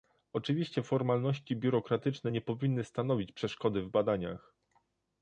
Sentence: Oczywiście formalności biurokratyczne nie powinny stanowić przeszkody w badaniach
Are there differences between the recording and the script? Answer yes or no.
no